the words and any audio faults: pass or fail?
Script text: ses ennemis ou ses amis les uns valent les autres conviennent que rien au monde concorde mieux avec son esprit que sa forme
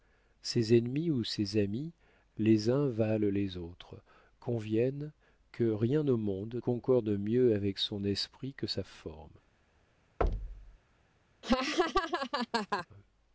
fail